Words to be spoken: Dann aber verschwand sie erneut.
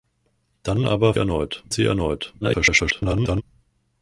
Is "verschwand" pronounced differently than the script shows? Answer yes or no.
yes